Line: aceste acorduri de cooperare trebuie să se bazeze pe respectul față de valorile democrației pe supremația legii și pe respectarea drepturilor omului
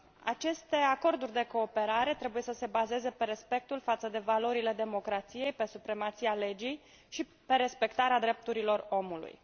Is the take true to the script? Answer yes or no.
yes